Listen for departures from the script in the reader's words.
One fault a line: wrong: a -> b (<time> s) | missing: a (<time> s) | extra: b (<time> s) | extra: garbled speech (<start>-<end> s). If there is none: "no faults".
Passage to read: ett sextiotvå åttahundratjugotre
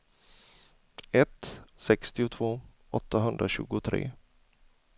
no faults